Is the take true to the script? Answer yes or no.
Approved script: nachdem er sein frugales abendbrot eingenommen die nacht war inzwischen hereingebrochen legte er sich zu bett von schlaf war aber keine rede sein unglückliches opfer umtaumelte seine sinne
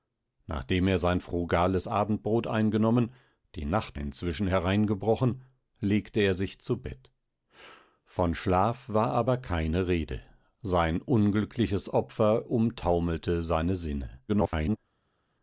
no